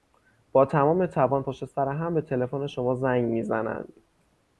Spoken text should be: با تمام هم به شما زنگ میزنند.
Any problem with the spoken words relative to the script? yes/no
yes